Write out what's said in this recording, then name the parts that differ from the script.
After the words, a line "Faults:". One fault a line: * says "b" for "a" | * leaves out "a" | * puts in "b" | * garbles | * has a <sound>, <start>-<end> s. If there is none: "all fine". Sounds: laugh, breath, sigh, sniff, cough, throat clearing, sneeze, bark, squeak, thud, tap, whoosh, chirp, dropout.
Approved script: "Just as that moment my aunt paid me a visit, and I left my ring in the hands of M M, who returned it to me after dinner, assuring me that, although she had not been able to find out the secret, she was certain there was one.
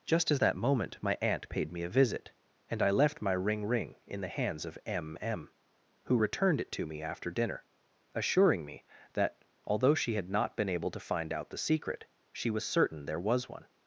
"Just as that moment my aunt paid me a visit, and I left my ring ring in the hands of M M, who returned it to me after dinner, assuring me that, although she had not been able to find out the secret, she was certain there was one.
Faults:
* puts in "ring"